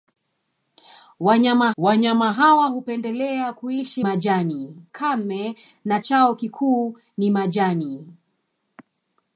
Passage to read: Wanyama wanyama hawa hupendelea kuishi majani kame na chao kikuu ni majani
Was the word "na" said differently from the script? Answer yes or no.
no